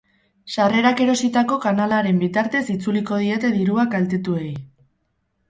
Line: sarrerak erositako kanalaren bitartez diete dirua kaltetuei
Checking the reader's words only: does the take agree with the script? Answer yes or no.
no